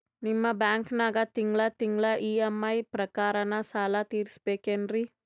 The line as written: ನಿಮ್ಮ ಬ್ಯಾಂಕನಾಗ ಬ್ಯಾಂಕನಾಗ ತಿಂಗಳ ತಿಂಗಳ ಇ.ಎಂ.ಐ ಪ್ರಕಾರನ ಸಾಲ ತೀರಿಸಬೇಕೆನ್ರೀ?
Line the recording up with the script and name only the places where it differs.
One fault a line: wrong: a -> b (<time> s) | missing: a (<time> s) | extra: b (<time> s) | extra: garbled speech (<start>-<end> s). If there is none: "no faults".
missing: ಬ್ಯಾಂಕನಾಗ (1.2 s)